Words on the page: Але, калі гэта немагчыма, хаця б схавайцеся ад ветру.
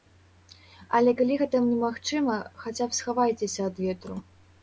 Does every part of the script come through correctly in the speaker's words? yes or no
yes